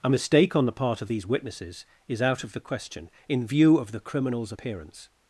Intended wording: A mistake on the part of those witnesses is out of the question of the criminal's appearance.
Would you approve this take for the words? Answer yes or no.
no